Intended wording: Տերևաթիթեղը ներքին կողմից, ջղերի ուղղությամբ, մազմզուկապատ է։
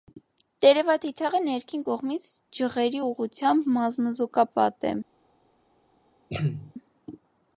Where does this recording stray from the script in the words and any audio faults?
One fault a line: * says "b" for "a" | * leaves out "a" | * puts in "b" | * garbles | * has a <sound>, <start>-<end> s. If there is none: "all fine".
* has a throat clearing, 6.3-6.7 s